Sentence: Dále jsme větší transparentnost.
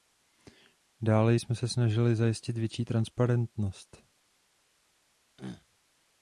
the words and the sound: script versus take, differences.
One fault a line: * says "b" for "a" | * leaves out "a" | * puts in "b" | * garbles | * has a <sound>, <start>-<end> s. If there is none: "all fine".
* puts in "se snažili zajistit"
* has a throat clearing, 5.4-5.7 s